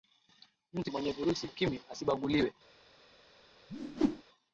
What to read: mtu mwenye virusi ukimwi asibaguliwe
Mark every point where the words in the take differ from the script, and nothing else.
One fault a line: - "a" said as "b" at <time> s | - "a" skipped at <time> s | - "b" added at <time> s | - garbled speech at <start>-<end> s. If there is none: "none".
none